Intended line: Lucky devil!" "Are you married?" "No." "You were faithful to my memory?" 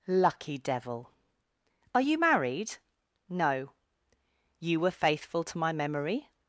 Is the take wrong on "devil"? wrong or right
right